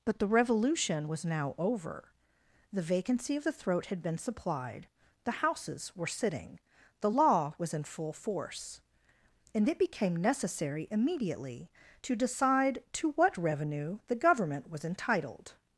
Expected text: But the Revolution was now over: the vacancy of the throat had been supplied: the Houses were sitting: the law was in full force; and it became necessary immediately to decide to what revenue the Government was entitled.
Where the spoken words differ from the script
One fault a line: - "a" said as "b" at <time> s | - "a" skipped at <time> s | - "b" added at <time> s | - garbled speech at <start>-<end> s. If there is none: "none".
none